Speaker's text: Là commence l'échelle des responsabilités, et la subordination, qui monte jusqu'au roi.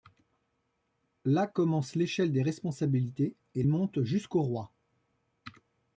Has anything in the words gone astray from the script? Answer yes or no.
yes